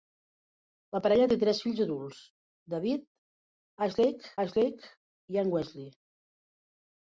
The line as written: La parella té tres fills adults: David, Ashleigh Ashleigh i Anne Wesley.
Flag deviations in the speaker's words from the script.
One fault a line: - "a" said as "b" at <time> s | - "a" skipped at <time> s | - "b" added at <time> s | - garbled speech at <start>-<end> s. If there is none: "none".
none